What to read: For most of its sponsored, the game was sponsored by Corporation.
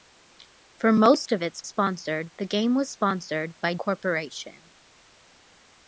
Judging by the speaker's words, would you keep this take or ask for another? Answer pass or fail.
pass